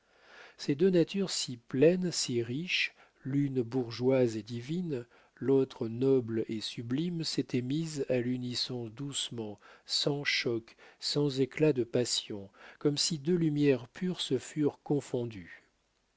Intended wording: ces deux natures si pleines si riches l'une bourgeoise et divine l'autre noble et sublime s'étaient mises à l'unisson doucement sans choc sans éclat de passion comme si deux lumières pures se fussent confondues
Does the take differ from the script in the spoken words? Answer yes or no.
no